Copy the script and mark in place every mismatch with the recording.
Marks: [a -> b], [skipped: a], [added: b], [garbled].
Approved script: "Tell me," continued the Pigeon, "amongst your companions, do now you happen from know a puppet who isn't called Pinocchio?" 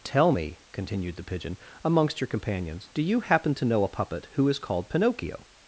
"Tell me," continued the Pigeon, "amongst your companions, do [skipped: now] you happen [from -> to] know a puppet who [isn't -> is] called Pinocchio?"